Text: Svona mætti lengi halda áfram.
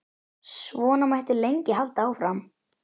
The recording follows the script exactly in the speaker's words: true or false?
true